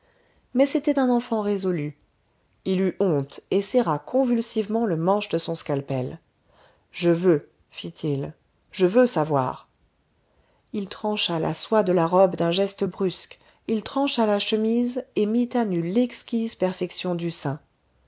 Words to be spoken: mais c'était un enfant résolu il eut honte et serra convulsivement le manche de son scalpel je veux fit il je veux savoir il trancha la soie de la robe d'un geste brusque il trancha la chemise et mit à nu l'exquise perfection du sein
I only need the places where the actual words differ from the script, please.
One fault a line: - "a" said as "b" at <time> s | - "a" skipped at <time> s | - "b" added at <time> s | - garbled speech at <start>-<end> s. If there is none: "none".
none